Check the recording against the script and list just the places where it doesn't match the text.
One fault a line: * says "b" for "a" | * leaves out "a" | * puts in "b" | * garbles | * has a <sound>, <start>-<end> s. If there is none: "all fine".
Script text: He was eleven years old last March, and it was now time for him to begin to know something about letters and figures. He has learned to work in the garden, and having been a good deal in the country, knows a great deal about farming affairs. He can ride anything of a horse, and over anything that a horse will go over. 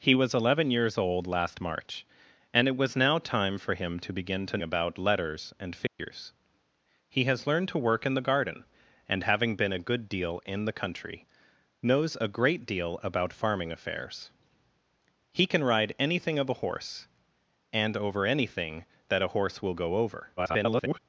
* leaves out "know something"
* has a dropout, 5.9-6.0 s
* garbles